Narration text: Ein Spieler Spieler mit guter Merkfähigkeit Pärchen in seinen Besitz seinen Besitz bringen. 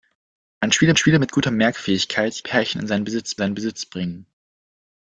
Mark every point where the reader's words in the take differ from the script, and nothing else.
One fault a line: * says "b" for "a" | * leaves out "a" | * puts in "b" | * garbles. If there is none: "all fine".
all fine